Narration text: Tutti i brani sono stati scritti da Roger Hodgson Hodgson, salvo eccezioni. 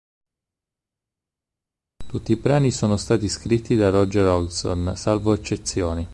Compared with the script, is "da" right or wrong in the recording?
right